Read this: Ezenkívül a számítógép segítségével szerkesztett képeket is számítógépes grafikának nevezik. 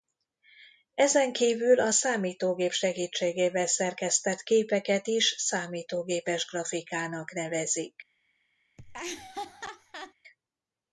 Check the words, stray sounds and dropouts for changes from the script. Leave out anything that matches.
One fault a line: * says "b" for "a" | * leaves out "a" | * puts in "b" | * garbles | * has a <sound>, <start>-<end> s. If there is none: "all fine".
* has a laugh, 8.8-10.1 s